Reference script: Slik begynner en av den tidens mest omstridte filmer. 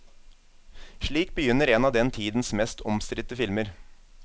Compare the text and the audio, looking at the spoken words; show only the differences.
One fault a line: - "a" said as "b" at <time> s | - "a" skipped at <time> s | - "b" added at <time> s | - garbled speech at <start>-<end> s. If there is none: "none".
none